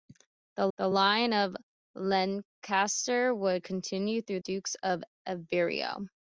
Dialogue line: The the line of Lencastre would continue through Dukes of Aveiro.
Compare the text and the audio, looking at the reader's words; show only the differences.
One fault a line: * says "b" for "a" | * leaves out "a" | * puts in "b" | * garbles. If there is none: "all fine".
all fine